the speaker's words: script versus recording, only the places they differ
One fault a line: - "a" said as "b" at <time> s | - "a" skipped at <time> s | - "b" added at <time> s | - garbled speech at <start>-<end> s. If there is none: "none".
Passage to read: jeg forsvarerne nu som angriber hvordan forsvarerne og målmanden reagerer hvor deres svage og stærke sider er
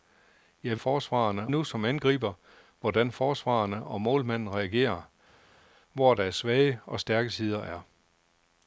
none